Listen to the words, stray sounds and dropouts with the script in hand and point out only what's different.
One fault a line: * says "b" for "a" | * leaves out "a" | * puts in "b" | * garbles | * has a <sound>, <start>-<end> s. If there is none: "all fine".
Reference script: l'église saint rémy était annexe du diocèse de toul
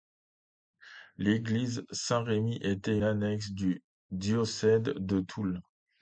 all fine